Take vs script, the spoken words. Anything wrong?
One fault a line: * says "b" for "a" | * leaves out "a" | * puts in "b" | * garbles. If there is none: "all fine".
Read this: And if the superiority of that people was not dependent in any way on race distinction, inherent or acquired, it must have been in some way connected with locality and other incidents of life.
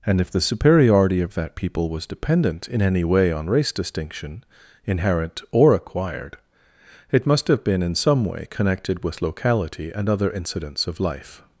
* leaves out "not"